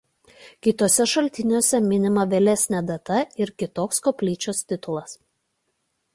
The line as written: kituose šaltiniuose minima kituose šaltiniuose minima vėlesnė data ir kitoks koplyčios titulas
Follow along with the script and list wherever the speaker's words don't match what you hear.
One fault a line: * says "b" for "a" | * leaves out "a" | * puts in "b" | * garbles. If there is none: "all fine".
* leaves out "kituose šaltiniuose minima"